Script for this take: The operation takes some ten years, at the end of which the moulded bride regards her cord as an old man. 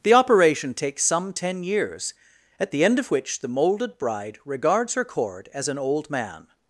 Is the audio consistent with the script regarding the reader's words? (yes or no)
yes